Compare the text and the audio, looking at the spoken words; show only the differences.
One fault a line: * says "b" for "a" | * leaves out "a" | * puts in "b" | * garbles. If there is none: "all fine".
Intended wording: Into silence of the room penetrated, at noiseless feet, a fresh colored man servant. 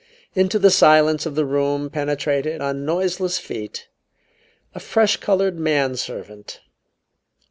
* puts in "the"
* says "on" for "at"